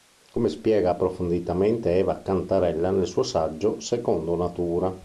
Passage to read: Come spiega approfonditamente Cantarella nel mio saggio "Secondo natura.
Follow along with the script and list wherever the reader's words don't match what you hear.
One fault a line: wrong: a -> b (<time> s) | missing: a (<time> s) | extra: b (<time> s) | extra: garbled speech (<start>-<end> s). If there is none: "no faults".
extra: Eva (2.0 s)
wrong: mio -> suo (3.1 s)